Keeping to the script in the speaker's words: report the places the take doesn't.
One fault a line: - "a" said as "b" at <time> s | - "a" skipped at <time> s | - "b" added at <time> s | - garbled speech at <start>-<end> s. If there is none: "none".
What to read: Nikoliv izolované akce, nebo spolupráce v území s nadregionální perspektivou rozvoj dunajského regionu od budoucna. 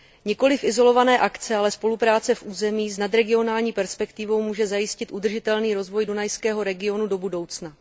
- "nebo" said as "ale" at 1.6 s
- "může zajistit udržitelný" added at 4.4 s
- "od" said as "do" at 7.1 s